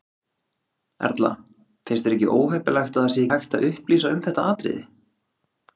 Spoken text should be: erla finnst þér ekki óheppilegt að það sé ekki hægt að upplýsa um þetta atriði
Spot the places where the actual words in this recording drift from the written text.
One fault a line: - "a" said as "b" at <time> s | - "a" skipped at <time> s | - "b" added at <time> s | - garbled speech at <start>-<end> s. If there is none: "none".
- "ekki" skipped at 3.3 s